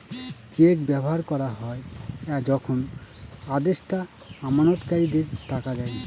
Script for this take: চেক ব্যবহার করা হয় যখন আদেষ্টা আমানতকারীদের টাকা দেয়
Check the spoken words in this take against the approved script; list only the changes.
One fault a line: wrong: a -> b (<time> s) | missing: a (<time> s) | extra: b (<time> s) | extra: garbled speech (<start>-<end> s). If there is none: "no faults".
no faults